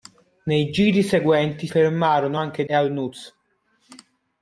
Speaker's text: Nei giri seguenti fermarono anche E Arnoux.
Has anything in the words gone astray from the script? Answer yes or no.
no